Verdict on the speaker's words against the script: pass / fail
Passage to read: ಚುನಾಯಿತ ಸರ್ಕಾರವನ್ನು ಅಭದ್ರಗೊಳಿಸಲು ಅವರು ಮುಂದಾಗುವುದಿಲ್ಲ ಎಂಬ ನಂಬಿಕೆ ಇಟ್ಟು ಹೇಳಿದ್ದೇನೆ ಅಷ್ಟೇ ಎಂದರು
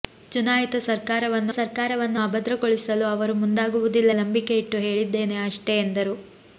fail